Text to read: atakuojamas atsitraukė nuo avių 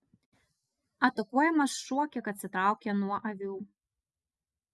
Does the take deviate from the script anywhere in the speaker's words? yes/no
yes